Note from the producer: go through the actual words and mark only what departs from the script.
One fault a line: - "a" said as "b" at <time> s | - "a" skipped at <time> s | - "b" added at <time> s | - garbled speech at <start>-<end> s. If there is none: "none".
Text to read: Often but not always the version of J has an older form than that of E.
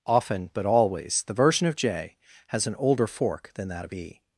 - "not" skipped at 0.7 s
- "form" said as "fork" at 3.1 s